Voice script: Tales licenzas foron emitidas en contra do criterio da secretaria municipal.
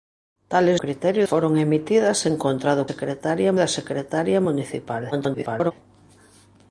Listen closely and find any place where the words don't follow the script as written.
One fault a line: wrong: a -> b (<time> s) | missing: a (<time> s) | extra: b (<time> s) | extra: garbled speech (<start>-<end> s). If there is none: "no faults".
wrong: licenzas -> criterio (0.8 s)
wrong: criterio -> secretaria (2.9 s)
extra: garbled speech (5.1-5.7 s)